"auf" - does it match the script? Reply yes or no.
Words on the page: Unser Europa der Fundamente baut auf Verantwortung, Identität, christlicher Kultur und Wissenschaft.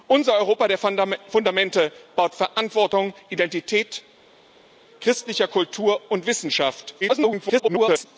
no